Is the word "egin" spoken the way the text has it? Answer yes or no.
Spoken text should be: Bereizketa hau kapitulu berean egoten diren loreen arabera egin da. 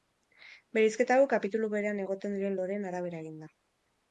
yes